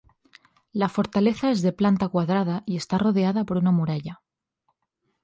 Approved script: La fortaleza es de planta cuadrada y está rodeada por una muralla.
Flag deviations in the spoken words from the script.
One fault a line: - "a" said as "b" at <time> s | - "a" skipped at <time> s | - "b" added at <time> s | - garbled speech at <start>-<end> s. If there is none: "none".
none